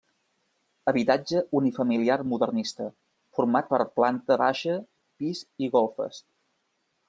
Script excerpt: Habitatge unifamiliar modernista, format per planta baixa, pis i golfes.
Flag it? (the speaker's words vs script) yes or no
no